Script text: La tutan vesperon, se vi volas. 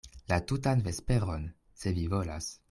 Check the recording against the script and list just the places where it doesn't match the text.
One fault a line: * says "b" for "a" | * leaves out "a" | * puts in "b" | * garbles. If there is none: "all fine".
all fine